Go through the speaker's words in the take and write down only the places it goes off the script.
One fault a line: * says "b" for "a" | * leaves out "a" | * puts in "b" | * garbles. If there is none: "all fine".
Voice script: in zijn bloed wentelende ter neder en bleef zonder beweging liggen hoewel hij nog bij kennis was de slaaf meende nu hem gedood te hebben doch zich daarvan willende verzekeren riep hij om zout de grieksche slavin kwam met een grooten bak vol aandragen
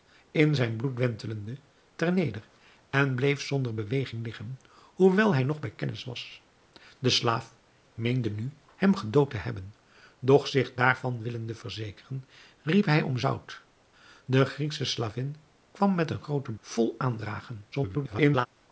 * leaves out "bak"
* garbles